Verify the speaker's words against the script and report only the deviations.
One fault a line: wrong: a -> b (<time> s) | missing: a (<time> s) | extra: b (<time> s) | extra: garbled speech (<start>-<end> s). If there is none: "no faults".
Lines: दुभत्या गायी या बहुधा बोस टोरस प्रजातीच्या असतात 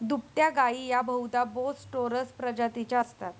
no faults